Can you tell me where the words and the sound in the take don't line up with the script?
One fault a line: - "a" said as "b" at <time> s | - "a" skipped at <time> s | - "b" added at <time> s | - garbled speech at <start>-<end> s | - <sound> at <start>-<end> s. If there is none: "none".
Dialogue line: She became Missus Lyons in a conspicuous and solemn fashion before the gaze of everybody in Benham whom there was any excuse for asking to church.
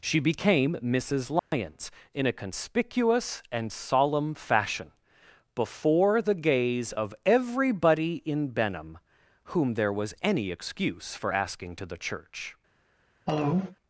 - dropout at 1.4-1.5 s
- "the" added at 11.8 s
- cough at 13.3-13.8 s